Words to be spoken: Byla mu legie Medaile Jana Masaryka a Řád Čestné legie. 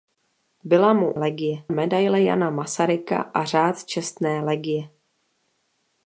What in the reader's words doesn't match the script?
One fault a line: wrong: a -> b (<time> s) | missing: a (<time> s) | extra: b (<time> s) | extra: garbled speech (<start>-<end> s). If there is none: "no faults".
no faults